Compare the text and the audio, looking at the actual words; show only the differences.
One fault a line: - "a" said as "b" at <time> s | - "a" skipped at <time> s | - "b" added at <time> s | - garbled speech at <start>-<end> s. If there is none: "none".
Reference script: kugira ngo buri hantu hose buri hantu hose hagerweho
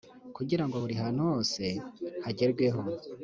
- "buri hantu hose" skipped at 1.6 s